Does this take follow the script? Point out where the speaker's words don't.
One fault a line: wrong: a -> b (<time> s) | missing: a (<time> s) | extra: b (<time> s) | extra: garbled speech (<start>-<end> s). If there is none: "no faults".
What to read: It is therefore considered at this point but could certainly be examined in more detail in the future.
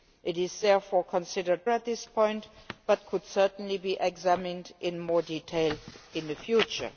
no faults